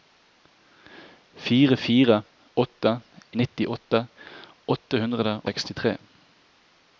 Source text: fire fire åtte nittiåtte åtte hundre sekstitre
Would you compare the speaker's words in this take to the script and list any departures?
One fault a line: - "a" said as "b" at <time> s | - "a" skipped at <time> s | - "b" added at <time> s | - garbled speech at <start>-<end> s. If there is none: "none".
none